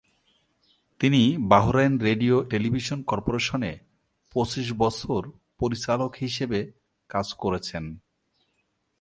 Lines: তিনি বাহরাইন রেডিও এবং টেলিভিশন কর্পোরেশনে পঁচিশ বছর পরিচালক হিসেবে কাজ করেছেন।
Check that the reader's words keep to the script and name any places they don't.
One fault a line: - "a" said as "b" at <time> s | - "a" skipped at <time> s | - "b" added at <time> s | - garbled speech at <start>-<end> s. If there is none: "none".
- "এবং" skipped at 2.5 s